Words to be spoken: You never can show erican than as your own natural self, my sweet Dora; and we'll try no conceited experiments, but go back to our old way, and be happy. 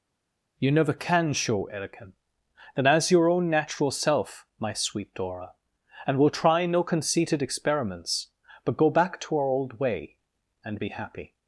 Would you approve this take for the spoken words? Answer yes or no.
yes